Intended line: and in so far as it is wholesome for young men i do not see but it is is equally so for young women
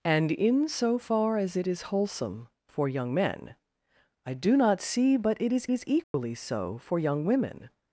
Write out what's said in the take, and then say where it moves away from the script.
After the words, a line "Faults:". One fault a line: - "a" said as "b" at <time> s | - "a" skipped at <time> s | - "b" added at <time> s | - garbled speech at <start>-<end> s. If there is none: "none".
and in so far as it is wholesome for young men i do not see but it is is equally so for young women
Faults:
none